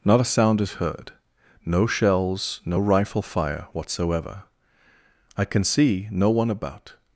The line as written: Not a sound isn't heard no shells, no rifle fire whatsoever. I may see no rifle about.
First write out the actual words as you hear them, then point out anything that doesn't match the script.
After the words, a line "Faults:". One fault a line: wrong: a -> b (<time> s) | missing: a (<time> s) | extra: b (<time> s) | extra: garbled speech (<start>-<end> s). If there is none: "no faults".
Not a sound is heard no shells, no rifle fire whatsoever. I can see no one about.
Faults:
wrong: isn't -> is (0.6 s)
wrong: may -> can (5.4 s)
wrong: rifle -> one (6.3 s)